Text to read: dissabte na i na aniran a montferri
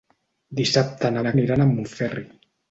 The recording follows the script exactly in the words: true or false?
true